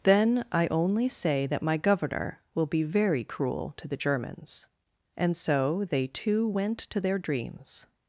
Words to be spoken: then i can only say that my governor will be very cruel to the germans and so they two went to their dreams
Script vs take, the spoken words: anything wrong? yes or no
yes